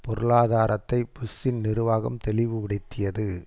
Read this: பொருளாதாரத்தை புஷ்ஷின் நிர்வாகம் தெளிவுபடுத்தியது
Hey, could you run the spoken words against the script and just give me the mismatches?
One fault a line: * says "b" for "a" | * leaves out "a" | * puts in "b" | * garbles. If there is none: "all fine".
all fine